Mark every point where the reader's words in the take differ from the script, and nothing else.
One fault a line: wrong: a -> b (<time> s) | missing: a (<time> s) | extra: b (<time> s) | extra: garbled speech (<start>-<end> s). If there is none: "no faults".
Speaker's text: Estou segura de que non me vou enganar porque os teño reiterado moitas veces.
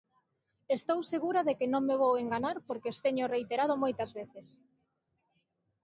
no faults